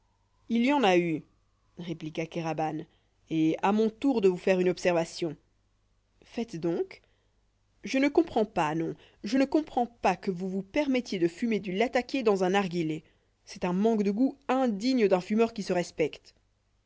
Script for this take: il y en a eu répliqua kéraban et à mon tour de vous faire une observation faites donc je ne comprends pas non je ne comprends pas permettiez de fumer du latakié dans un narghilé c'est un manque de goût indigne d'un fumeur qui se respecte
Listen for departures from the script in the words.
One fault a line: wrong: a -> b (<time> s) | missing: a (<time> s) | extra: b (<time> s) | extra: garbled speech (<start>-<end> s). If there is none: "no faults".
extra: que vous vous (10.2 s)